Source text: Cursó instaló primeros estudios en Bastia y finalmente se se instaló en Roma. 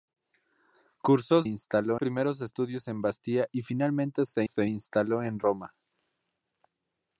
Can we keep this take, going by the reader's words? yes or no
yes